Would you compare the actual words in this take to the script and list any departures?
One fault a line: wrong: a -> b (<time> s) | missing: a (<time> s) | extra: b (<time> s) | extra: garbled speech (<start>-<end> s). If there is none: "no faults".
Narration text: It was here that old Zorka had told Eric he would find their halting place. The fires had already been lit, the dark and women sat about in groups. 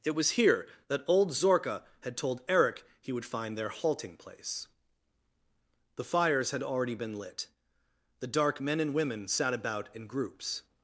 extra: men (8.6 s)